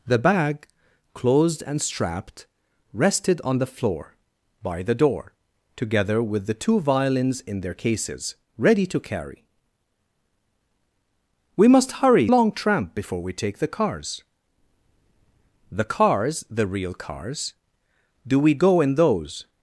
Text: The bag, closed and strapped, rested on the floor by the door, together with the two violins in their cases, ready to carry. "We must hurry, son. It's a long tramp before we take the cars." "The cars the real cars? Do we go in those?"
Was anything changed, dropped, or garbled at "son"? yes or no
yes